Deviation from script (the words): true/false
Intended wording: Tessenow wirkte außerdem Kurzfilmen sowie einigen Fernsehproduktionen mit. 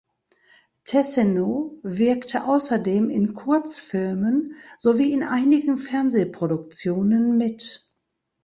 true